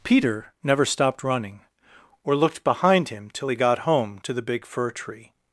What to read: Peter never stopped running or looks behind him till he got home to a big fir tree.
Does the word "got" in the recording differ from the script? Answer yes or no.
no